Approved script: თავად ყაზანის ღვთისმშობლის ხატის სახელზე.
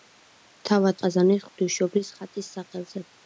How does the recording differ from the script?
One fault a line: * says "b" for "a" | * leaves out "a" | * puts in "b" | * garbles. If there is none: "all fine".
all fine